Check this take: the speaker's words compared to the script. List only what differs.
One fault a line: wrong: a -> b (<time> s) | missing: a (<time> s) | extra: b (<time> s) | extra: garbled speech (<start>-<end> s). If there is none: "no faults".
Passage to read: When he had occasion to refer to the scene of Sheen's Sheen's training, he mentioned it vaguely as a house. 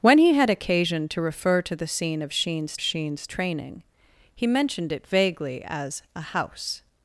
no faults